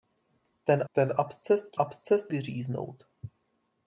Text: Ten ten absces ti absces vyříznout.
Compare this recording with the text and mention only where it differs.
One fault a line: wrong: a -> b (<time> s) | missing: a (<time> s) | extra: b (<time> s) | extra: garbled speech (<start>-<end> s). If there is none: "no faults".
no faults